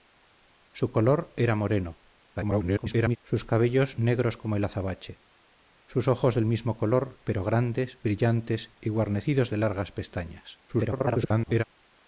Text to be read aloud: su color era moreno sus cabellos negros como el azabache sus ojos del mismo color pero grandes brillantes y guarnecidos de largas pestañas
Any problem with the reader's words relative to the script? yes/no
yes